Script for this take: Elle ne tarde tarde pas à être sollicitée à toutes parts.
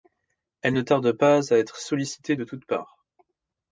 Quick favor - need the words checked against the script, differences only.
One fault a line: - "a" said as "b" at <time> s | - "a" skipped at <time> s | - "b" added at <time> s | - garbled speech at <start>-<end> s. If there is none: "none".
- "tarde" skipped at 1.1 s
- "à" said as "de" at 2.3 s